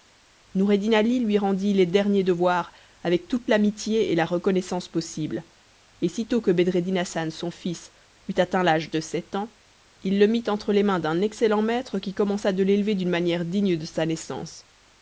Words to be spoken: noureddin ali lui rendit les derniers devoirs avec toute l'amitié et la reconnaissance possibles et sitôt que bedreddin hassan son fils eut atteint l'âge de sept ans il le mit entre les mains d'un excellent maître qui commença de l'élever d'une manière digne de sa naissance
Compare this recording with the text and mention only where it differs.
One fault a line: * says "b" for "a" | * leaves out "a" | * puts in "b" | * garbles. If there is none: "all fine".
all fine